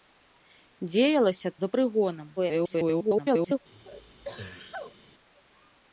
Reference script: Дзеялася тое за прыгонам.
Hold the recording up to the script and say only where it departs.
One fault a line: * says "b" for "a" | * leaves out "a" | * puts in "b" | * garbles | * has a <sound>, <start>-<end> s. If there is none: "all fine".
* leaves out "тое"
* garbles
* has a sneeze, 3.7-5.0 s